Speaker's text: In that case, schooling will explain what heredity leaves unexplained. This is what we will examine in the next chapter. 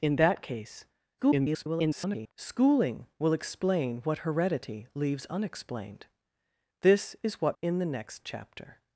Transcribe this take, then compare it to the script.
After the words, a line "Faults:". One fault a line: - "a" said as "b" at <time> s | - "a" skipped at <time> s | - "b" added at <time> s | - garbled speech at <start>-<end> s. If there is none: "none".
In that case, [garbled] schooling will explain what heredity leaves unexplained. This is what in the next chapter.
Faults:
- garbled speech at 1.2-2.3 s
- "we will examine" skipped at 7.6 s